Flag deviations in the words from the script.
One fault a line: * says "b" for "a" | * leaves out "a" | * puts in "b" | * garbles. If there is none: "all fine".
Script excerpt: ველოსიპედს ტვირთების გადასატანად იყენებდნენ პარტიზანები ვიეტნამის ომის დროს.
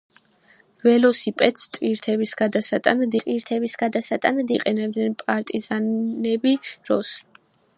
* puts in "ტვირთების გადასატანად"
* leaves out "ვიეტნამის ომის"